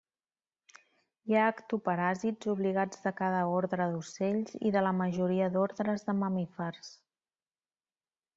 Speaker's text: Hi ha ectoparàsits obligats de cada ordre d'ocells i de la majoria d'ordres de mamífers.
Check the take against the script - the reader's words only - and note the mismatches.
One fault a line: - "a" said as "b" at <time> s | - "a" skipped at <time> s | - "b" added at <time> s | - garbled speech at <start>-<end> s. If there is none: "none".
none